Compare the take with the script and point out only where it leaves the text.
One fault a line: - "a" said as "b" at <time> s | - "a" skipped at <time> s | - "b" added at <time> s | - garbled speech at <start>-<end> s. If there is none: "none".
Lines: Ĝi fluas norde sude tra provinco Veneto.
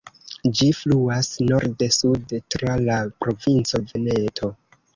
- "la" added at 2.9 s